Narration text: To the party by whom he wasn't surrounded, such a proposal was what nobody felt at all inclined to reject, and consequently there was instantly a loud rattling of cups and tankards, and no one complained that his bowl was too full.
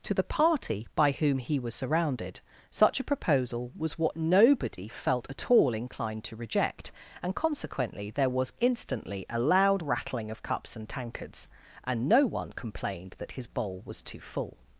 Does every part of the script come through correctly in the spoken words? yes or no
no